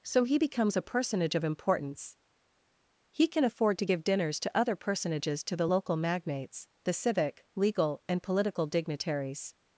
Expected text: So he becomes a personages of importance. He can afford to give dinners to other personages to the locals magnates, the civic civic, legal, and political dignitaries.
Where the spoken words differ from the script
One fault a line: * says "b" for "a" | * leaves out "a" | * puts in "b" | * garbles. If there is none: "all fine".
* says "personage" for "personages"
* says "local" for "locals"
* leaves out "civic"